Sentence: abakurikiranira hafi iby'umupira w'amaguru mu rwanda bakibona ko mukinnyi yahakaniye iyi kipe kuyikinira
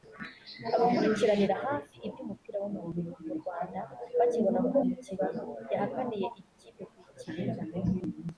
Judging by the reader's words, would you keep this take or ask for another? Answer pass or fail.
pass